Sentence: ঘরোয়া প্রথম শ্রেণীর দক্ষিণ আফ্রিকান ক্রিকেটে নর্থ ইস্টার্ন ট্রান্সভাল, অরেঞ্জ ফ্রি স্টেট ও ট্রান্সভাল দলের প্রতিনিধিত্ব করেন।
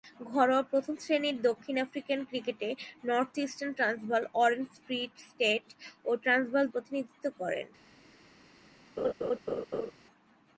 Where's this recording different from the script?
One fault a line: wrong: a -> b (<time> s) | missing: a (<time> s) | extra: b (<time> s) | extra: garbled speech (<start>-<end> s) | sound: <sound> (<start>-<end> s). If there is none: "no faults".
missing: দলের (6.6 s)
sound: laugh (9.0-9.9 s)